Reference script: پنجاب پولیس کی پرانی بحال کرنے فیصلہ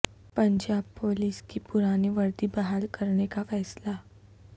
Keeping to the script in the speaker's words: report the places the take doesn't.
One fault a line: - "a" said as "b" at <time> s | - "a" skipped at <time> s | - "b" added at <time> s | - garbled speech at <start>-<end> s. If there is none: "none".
- "وردی" added at 2.1 s
- "کا" added at 3.3 s